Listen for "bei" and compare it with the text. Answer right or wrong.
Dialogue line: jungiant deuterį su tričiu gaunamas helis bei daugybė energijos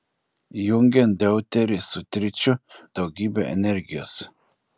wrong